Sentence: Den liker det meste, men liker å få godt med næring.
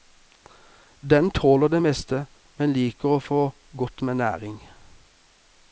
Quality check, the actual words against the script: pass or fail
fail